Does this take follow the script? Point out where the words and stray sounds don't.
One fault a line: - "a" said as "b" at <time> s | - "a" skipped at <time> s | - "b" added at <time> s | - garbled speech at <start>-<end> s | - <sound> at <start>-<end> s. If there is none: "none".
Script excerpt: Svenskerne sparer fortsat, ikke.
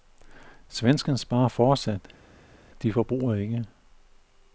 - "de forbruger" added at 2.8 s